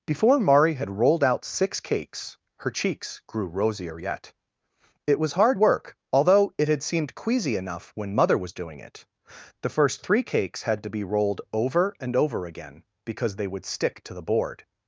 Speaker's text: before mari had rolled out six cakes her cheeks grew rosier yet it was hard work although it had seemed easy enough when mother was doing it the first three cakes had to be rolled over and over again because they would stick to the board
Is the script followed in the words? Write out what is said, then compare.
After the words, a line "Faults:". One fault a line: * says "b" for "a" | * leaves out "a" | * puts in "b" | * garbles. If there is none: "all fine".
before mari had rolled out six cakes her cheeks grew rosier yet it was hard work although it had seemed queasy enough when mother was doing it the first three cakes had to be rolled over and over again because they would stick to the board
Faults:
* says "queasy" for "easy"